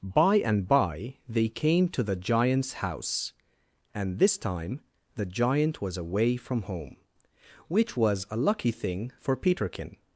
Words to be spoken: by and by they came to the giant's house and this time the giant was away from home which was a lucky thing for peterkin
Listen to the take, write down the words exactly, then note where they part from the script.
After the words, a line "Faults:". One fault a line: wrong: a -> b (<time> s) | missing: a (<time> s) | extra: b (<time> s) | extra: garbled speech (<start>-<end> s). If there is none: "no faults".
by and by they came to the giant's house and this time the giant was away from home which was a lucky thing for peterkin
Faults:
no faults